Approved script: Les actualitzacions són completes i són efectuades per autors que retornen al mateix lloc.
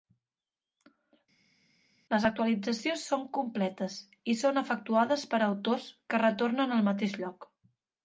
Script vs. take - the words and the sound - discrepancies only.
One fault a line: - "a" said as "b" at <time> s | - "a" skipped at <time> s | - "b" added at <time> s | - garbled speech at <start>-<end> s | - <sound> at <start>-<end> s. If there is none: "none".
none